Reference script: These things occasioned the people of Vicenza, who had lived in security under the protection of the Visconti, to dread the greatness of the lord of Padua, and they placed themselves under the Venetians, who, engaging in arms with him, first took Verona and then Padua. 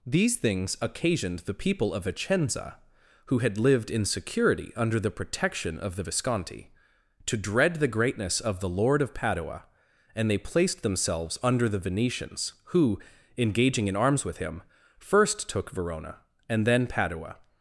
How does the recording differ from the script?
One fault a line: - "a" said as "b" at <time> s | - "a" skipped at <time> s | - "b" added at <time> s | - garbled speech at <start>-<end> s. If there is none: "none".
none